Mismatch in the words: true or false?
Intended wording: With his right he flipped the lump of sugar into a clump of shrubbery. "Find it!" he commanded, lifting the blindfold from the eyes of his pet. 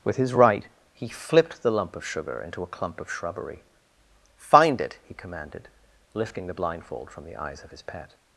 false